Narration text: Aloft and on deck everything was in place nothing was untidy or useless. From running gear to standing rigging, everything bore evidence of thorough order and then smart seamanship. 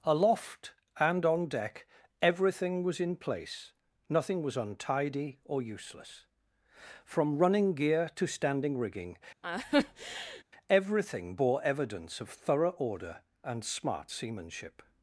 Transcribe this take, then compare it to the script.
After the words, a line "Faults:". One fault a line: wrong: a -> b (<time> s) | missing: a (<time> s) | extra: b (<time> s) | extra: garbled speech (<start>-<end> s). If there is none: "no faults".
Aloft and on deck everything was in place nothing was untidy or useless. From running gear to standing rigging, everything bore evidence of thorough order and smart seamanship.
Faults:
missing: then (13.6 s)